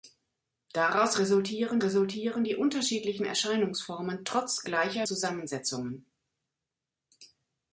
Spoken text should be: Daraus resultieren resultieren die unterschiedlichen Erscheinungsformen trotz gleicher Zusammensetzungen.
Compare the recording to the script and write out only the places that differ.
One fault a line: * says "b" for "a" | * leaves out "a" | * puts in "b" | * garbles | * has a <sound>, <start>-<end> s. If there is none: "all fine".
all fine